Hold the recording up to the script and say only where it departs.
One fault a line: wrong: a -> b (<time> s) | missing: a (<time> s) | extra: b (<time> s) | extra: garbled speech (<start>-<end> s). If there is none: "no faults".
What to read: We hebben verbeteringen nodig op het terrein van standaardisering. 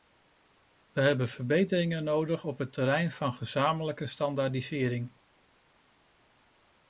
extra: gezamenlijke (3.3 s)